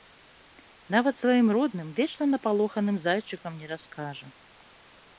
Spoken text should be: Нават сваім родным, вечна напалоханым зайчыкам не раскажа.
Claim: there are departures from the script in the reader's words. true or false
false